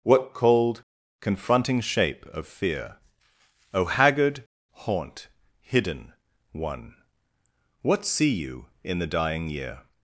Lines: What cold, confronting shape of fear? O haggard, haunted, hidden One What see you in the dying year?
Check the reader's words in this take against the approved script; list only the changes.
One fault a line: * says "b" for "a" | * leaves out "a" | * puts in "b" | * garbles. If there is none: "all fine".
* says "haunt" for "haunted"